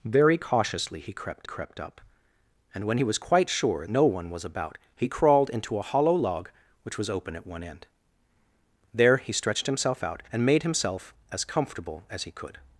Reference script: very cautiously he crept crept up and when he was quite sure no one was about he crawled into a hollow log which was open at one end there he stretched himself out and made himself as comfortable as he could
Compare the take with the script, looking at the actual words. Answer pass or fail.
pass